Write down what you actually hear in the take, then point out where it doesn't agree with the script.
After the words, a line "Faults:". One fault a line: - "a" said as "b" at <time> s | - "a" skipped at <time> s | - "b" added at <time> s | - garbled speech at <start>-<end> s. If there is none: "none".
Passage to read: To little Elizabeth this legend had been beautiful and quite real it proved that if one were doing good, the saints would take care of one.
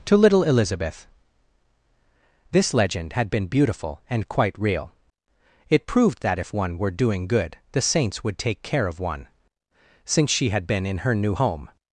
To little Elizabeth this legend had been beautiful and quite real it proved that if one were doing good, the saints would take care of one. Since she had been in her new home
Faults:
- "Since she had been in her new home" added at 10.0 s